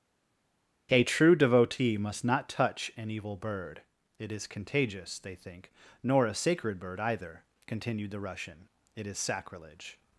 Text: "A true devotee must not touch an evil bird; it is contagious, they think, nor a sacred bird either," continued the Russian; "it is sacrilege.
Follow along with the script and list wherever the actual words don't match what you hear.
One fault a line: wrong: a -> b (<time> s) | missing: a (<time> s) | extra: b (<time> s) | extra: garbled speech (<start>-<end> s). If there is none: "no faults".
no faults